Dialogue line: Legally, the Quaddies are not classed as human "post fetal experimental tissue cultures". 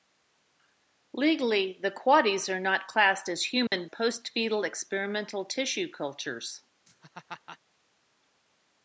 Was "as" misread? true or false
false